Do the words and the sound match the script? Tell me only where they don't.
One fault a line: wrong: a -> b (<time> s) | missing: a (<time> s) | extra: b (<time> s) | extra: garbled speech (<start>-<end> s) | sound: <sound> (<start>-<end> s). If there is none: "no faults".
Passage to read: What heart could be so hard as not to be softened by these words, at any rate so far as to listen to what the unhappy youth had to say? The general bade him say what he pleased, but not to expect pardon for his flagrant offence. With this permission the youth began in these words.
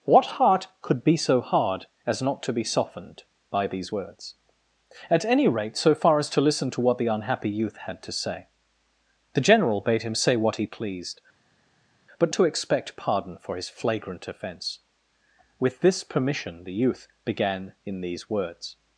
missing: not (12.3 s)